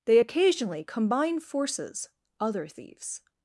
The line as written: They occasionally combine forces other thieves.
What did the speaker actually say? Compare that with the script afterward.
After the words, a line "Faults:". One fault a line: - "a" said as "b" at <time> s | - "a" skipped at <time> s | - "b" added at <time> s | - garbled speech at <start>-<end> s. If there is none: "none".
They occasionally combine forces other thieves.
Faults:
none